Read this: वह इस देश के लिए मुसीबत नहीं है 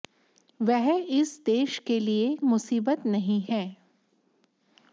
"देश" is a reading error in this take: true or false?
false